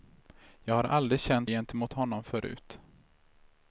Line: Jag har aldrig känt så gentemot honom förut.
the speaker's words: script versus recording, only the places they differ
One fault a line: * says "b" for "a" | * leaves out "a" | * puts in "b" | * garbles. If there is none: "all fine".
* leaves out "så"